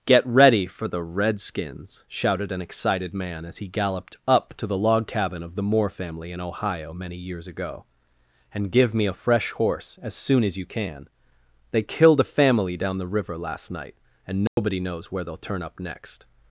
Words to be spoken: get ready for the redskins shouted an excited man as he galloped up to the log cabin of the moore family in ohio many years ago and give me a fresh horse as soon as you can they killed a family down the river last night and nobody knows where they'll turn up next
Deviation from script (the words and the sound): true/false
true